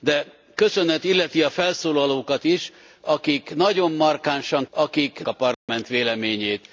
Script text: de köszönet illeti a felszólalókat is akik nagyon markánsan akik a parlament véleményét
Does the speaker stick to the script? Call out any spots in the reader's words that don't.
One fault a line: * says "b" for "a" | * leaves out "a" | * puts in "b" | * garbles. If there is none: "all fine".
all fine